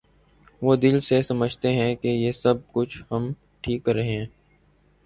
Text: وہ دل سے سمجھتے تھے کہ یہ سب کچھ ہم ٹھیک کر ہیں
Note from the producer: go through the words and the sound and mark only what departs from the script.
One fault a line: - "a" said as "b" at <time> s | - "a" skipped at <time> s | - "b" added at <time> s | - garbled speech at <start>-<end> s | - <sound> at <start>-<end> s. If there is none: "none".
- "تھے" said as "ہیں" at 1.7 s
- "رہے" added at 3.9 s